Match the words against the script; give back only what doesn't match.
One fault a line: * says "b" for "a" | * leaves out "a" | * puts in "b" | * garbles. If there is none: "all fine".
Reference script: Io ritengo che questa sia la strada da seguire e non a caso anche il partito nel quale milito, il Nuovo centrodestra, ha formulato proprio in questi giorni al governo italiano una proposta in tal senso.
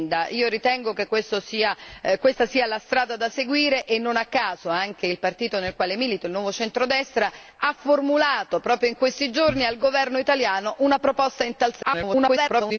* garbles